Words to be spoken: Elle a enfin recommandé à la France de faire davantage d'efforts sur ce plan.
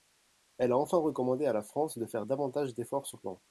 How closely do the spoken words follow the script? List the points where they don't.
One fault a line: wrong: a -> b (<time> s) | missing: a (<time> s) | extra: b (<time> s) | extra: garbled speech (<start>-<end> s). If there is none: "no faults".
missing: ce (3.2 s)